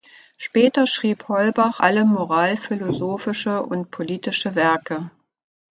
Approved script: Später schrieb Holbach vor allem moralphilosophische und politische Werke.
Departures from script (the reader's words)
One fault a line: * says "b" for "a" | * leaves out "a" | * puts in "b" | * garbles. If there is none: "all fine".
* leaves out "vor"